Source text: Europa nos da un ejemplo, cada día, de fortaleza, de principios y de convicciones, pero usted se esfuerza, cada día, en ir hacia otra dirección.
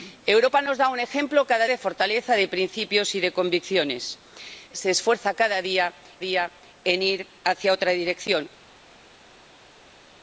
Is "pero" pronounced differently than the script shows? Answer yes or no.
yes